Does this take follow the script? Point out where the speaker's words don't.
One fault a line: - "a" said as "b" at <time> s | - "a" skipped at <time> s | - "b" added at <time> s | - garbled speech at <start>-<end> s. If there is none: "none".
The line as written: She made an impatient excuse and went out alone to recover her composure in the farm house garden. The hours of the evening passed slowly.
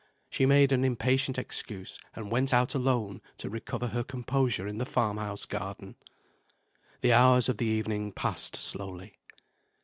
none